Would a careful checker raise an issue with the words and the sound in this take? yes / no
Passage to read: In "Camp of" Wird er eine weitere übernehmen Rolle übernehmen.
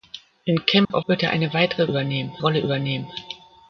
yes